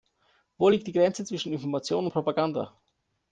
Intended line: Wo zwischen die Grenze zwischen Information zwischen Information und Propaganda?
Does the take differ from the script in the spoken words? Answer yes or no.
yes